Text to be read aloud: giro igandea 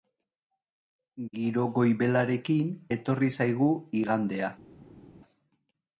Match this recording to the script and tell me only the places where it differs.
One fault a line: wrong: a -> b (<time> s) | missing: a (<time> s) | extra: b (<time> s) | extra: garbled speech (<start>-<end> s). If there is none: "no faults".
extra: goibelarekin etorri zaigu (1.8 s)